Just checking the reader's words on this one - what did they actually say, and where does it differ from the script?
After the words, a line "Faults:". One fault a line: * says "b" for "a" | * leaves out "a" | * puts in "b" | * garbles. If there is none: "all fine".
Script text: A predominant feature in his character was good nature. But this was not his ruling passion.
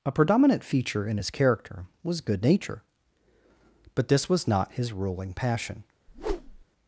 A predominant feature in his character was good nature. But this was not his ruling passion.
Faults:
all fine